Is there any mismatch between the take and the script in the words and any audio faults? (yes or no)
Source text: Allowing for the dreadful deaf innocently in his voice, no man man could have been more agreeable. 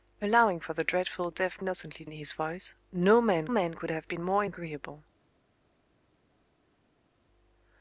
no